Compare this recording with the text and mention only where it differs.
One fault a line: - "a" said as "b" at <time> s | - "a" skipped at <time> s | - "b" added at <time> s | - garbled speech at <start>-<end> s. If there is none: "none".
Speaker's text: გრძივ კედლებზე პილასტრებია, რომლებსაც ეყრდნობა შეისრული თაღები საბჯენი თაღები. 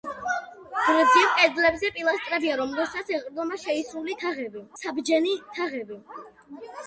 none